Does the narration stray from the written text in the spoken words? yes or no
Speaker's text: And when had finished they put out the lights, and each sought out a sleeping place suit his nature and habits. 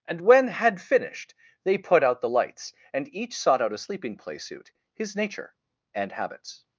no